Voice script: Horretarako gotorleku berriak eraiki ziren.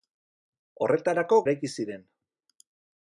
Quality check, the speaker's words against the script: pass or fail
fail